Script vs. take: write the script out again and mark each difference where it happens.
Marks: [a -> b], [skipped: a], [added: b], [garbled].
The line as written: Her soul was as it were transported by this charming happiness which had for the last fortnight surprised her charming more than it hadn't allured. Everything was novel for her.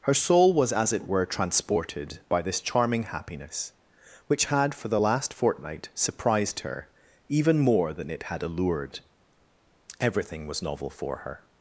Her soul was as it were transported by this charming happiness which had for the last fortnight surprised her [charming -> even] more than it [hadn't -> had] allured. Everything was novel for her.